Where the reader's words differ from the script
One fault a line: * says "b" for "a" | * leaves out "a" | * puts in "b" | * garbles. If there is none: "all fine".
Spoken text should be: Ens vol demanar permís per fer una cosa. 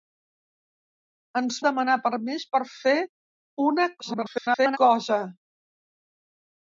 * leaves out "vol"
* garbles